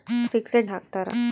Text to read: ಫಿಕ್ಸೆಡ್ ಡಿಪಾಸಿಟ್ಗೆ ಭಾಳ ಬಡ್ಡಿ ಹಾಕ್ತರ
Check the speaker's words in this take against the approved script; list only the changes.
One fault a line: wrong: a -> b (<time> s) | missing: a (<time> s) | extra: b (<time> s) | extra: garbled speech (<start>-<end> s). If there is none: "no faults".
missing: ಡಿಪಾಸಿಟ್ಗೆ ಭಾಳ ಬಡ್ಡಿ (0.7 s)